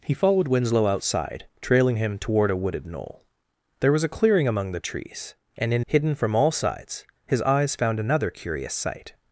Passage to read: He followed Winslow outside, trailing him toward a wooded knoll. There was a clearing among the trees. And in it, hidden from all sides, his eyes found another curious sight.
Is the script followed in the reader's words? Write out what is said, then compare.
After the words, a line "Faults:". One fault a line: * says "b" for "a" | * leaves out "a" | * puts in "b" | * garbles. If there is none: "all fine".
He followed Winslow outside, trailing him toward a wooded knoll. There was a clearing among the trees. And in hidden from all sides, his eyes found another curious sight.
Faults:
* leaves out "it"